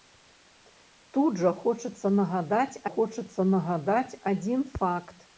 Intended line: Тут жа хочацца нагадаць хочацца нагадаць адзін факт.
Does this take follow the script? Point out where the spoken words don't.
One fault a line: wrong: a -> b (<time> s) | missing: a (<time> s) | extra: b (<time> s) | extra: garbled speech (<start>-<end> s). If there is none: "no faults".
no faults